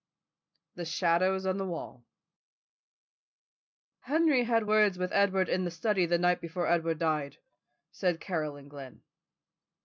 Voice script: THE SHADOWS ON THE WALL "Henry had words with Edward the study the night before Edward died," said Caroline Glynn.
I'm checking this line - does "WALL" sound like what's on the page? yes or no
yes